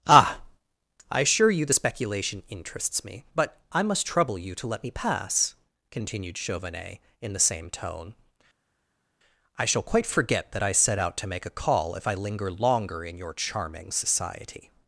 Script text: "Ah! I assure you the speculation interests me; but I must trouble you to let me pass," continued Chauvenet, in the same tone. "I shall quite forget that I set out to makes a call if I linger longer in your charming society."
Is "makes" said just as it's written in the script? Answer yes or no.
no